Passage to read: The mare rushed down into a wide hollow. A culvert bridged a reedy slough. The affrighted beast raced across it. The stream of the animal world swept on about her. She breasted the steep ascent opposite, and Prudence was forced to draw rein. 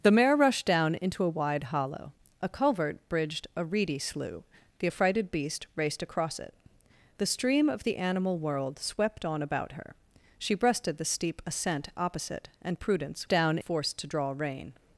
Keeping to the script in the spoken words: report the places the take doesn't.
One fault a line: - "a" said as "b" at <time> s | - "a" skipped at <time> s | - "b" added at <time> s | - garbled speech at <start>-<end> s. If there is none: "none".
- "was" said as "down" at 13.3 s